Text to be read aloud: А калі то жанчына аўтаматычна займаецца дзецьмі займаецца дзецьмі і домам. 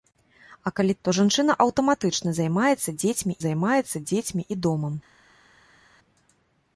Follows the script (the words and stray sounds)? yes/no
yes